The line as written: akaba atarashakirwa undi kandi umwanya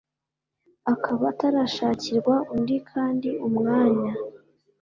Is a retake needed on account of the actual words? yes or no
no